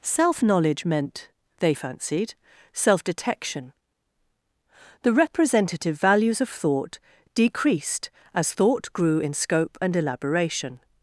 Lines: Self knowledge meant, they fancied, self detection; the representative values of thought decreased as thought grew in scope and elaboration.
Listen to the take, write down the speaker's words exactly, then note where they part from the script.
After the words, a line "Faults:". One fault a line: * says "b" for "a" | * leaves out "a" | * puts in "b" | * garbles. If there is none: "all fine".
Self knowledge meant, they fancied, self detection; the representative values of thought decreased as thought grew in scope and elaboration.
Faults:
all fine